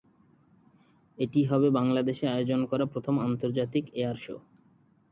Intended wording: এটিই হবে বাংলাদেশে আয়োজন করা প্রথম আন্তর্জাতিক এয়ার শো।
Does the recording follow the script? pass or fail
pass